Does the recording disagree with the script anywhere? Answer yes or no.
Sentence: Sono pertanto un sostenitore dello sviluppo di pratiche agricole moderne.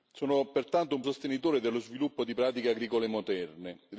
no